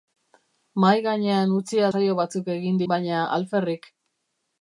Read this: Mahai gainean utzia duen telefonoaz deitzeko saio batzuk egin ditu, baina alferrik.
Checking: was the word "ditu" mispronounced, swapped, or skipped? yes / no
yes